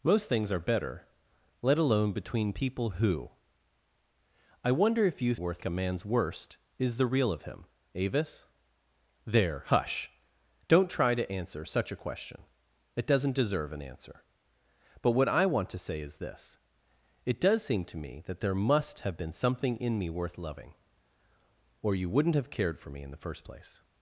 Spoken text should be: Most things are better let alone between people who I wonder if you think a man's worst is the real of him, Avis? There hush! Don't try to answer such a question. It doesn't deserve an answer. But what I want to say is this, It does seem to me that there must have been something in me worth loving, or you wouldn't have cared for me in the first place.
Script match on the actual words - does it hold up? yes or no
no